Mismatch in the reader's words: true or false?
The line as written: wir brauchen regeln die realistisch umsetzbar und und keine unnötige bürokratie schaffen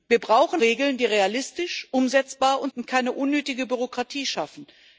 false